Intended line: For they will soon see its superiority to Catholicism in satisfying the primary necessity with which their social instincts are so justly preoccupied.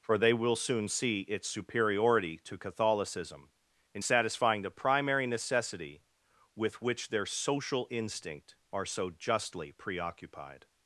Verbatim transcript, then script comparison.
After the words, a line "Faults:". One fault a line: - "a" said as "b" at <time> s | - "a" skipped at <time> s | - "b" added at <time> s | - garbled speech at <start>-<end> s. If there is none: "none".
For they will soon see its superiority to Catholicism in satisfying the primary necessity with which their social instinct are so justly preoccupied.
Faults:
- "instincts" said as "instinct" at 7.9 s